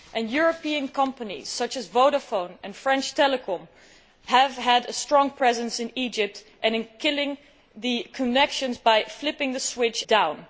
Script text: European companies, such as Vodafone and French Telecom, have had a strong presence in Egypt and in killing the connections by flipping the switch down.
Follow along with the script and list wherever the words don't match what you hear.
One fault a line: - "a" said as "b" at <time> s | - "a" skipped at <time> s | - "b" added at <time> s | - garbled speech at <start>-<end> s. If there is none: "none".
none